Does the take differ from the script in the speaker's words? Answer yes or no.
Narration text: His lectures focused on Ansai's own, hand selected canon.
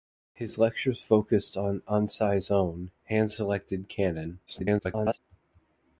yes